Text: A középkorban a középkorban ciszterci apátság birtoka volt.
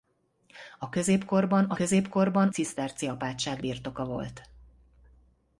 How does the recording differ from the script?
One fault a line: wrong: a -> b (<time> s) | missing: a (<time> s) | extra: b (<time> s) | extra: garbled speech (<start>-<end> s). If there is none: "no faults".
no faults